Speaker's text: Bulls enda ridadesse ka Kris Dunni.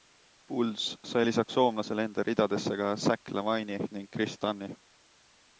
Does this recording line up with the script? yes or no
no